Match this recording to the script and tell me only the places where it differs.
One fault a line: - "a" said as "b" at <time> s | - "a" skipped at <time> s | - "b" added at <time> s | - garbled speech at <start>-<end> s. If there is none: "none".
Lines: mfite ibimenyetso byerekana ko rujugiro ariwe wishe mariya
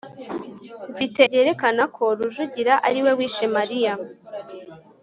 - "ibimenyetso" skipped at 1.2 s